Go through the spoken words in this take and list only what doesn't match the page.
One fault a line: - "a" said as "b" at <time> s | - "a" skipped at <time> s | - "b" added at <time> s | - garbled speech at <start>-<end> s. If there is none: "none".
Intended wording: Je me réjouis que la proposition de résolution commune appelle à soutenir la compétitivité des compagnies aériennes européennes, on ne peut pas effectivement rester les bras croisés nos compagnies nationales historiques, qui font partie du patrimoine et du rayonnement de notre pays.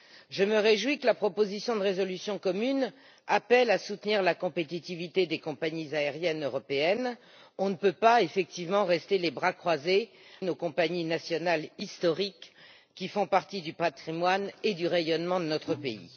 none